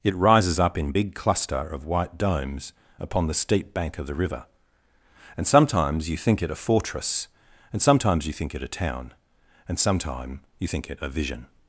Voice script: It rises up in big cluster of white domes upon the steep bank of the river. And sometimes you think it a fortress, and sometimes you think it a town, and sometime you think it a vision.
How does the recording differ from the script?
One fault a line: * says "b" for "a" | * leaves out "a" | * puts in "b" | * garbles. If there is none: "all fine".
all fine